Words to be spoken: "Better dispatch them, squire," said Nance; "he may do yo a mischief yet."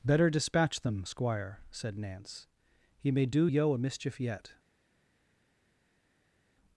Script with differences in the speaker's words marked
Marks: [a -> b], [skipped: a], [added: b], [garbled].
"Better dispatch them, squire," said Nance; "he may do yo a mischief yet."